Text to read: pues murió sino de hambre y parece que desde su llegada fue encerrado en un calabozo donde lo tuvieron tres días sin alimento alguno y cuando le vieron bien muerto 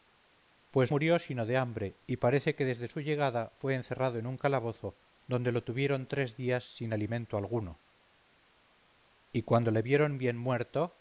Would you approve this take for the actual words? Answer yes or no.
yes